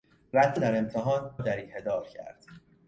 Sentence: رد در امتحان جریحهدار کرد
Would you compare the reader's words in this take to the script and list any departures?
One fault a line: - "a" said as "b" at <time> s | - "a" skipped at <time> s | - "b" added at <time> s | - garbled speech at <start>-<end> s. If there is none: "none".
none